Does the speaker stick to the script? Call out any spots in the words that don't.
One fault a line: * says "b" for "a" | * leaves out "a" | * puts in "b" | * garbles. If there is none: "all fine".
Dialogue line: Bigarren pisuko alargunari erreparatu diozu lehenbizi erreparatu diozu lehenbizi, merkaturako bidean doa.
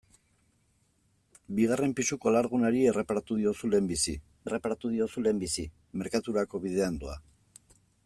all fine